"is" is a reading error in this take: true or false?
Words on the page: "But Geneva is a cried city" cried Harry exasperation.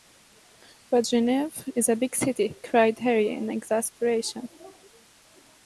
false